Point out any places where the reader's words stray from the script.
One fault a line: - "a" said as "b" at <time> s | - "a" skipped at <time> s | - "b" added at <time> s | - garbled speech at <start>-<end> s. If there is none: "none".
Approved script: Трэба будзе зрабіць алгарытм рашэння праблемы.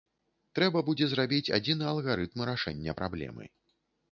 - "адзіны" added at 1.6 s